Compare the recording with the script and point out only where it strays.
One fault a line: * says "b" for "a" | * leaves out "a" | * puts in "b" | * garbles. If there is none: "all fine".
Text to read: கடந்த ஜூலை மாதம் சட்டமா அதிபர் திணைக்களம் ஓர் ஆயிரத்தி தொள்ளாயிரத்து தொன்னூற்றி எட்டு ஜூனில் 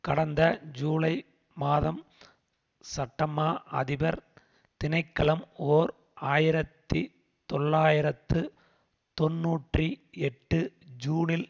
all fine